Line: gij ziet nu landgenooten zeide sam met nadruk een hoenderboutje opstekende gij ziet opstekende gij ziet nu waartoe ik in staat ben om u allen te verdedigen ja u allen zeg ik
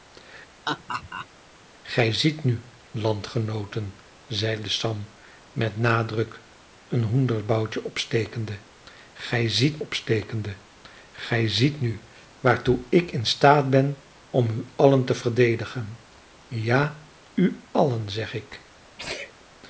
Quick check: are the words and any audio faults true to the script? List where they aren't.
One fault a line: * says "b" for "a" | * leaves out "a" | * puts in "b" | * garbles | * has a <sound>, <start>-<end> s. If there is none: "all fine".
* has a laugh, 0.7-1.3 s
* has a sneeze, 19.0-19.3 s